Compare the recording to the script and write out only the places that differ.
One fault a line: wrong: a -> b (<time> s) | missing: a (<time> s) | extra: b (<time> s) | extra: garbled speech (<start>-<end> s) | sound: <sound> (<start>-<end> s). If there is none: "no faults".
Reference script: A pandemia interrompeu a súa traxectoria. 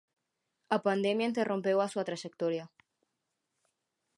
no faults